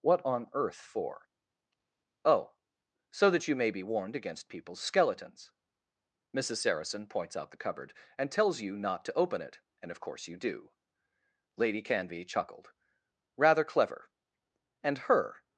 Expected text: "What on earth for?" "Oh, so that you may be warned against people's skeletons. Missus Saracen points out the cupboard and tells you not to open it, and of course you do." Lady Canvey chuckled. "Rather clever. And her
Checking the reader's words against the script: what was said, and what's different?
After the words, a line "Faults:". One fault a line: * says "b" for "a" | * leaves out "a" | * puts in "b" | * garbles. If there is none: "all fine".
"What on earth for?" "Oh, so that you may be warned against people's skeletons. Missus Saracen points out the cupboard and tells you not to open it, and of course you do." Lady Canvey chuckled. "Rather clever. And her
Faults:
all fine